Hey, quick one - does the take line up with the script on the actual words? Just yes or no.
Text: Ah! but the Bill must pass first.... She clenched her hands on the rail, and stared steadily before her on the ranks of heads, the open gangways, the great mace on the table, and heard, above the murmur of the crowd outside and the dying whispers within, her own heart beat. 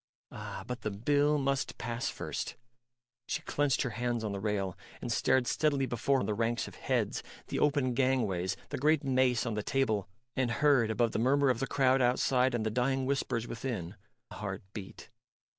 no